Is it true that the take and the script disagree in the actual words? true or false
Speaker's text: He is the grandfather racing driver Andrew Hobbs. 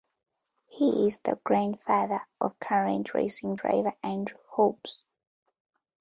true